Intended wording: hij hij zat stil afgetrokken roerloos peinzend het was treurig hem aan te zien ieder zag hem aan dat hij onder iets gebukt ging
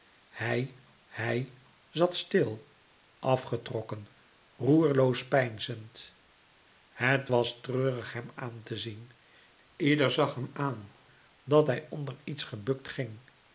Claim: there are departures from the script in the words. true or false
false